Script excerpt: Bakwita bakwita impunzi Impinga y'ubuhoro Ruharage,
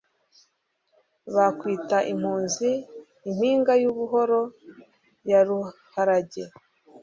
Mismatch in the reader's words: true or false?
true